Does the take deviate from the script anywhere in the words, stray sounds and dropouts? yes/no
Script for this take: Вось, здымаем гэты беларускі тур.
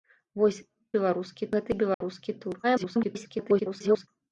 yes